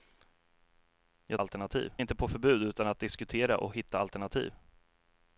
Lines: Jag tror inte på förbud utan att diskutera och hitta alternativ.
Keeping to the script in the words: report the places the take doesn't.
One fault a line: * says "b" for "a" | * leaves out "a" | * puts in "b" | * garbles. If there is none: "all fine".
* says "alternativ" for "tror"